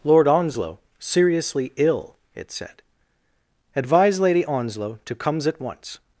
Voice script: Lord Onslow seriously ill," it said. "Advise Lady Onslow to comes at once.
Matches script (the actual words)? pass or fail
pass